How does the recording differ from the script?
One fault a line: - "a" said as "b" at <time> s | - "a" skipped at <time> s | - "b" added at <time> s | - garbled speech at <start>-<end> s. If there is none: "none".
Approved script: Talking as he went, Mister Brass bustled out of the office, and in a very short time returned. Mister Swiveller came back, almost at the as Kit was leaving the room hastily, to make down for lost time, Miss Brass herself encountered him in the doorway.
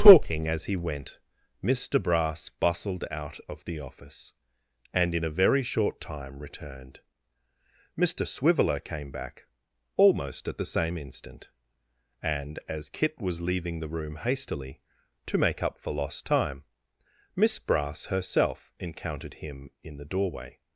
- "same instant and" added at 10.7 s
- "down" said as "up" at 15.6 s